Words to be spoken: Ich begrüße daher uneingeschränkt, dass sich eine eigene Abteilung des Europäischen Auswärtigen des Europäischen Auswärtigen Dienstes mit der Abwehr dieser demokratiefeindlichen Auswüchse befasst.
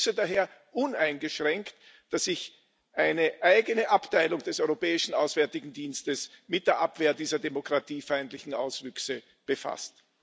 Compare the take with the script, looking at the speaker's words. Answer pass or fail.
fail